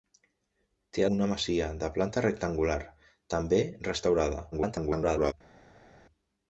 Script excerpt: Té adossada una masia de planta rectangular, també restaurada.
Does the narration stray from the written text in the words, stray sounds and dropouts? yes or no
yes